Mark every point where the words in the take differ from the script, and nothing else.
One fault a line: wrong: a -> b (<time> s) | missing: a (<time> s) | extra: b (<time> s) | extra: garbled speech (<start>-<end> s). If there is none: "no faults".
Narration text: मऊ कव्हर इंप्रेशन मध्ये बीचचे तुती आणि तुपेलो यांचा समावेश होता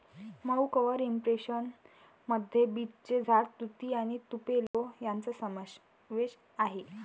extra: झाड (3.2 s)
wrong: होता -> आहे (6.6 s)